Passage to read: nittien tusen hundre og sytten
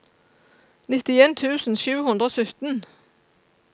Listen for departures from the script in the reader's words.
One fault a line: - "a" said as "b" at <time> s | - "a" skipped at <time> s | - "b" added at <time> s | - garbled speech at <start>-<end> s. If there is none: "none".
- "sju" added at 1.8 s